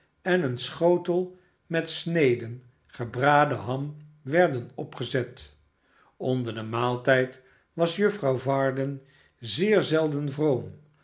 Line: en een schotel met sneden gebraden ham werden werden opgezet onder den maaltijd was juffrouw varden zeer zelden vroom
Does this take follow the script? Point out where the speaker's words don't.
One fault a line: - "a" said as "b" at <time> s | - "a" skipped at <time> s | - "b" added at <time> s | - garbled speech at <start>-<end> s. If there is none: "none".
- "werden" skipped at 4.7 s